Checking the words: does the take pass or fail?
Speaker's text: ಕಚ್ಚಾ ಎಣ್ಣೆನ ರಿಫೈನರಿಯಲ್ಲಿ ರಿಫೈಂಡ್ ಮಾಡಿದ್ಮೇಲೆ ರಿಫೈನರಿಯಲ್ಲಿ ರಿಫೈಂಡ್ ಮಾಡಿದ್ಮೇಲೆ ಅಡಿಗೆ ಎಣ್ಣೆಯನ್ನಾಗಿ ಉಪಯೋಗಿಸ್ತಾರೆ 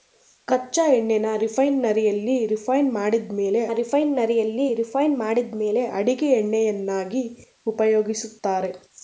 pass